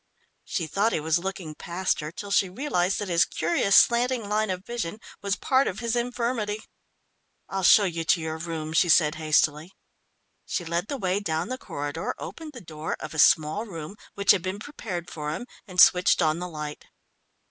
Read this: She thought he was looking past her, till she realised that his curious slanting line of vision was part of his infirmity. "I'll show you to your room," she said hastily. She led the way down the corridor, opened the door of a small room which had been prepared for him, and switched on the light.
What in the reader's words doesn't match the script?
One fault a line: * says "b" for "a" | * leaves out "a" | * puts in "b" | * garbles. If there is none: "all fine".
all fine